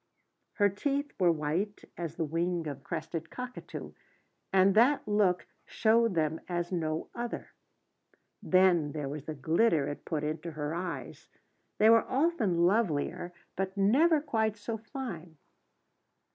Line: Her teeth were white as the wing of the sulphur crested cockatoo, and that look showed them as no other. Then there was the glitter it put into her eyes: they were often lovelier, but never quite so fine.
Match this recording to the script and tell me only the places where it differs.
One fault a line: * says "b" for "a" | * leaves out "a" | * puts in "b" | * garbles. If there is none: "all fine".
* leaves out "the sulphur"